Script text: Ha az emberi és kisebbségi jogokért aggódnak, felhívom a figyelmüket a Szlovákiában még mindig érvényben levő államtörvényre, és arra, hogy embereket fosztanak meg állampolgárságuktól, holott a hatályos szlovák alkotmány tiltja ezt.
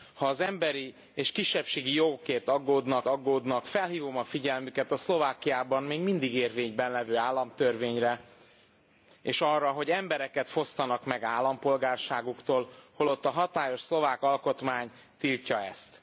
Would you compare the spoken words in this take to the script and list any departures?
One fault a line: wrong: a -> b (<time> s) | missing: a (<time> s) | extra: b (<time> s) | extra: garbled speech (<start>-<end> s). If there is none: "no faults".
extra: aggódnak (3.1 s)